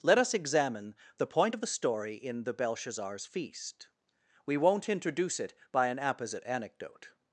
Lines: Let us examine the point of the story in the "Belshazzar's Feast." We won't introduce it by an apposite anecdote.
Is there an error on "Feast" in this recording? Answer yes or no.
no